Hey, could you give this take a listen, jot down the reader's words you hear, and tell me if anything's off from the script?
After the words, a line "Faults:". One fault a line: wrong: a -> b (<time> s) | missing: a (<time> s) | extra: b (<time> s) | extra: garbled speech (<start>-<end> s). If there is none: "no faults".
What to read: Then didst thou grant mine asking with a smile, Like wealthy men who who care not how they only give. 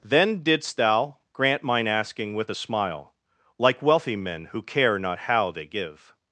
Then didst thou grant mine asking with a smile, Like wealthy men who care not how they give.
Faults:
missing: who (4.6 s)
missing: only (5.7 s)